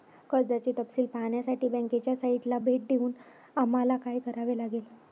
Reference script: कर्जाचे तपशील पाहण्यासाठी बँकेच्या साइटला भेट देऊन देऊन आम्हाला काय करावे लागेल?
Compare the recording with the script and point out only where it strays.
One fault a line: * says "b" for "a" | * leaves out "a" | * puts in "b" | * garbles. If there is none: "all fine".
* leaves out "देऊन"